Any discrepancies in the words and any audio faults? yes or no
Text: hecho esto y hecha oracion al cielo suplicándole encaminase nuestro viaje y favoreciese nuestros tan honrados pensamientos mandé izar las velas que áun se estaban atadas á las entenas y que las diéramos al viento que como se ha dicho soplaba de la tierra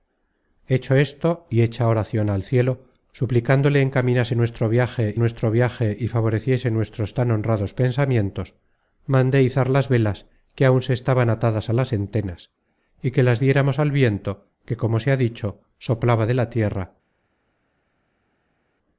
yes